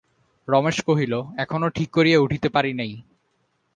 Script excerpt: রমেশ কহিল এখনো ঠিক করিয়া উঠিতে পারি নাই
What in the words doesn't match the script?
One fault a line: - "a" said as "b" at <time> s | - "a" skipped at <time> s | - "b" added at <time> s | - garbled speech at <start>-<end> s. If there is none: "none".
none